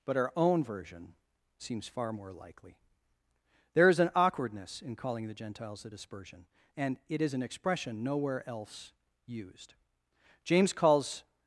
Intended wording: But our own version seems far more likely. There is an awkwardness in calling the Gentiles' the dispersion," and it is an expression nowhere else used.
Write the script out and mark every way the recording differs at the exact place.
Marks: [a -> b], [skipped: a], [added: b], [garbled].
But our own version seems far more likely. There is an awkwardness in calling the Gentiles' the dispersion," and it is an expression nowhere else used. [added: James calls]